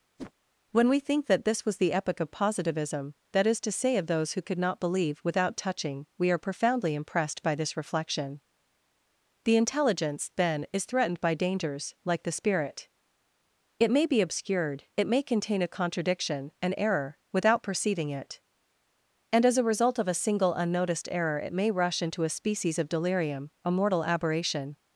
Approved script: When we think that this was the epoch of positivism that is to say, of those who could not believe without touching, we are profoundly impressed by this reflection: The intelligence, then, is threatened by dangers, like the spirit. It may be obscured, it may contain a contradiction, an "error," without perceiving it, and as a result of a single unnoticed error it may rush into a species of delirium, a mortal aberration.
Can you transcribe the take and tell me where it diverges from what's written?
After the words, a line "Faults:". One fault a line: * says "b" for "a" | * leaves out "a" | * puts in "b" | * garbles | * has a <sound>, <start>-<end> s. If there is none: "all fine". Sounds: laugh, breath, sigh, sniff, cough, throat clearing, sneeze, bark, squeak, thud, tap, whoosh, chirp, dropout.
When we think that this was the epoch of positivism that is to say, of those who could not believe without touching, we are profoundly impressed by this reflection: The intelligence, then, is threatened by dangers, like the spirit. It may be obscured, it may contain a contradiction, an "error," without perceiving it, and as a result of a single unnoticed error it may rush into a species of delirium, a mortal aberration.
Faults:
* has a whoosh, 0.2-0.3 s